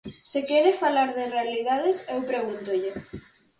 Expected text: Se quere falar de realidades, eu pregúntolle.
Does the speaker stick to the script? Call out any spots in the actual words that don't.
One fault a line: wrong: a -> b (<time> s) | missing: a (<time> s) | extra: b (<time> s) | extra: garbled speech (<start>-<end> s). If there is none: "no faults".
no faults